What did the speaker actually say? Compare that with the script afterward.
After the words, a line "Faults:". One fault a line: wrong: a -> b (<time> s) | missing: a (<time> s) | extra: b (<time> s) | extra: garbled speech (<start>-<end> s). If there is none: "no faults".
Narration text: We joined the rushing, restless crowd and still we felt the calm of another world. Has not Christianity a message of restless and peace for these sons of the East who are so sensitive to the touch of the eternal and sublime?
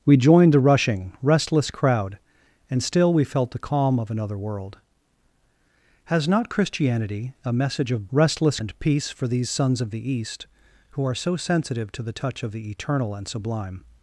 We joined the rushing, restless crowd and still we felt the calm of another world. Has not Christianity a message of restless and peace for these sons of the East who are so sensitive to the touch of the eternal and sublime?
Faults:
no faults